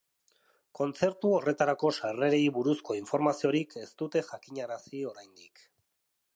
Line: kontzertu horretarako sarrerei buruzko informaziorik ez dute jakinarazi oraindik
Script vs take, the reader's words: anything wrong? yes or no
no